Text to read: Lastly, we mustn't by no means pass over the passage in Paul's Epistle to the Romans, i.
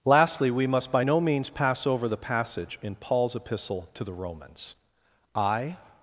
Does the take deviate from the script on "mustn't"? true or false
true